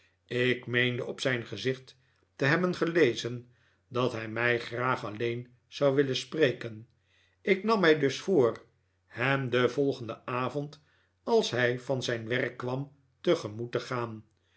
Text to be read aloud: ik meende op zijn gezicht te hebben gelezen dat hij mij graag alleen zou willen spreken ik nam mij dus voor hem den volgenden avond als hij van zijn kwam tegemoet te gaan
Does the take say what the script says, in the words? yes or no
no